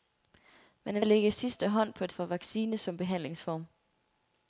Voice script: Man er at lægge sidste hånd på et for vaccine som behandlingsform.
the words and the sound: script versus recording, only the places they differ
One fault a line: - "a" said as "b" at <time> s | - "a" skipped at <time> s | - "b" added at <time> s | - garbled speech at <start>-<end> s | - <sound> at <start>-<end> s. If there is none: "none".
none